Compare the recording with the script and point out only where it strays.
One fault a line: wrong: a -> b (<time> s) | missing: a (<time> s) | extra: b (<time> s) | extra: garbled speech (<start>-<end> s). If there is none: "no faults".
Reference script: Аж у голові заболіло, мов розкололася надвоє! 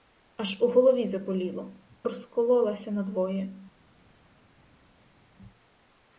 missing: мов (1.8 s)